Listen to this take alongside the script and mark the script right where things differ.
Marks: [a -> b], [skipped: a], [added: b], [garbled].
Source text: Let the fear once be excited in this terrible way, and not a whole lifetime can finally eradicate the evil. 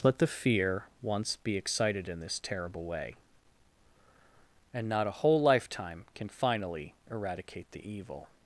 Let the fear once be excited in this terrible way, and not a whole lifetime can finally eradicate the evil.